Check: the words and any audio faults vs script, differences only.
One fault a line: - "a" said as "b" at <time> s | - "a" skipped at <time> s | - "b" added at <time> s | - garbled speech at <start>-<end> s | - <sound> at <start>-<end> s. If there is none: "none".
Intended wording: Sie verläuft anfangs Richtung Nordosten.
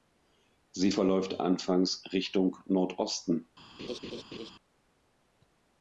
- laugh at 3.8-4.5 s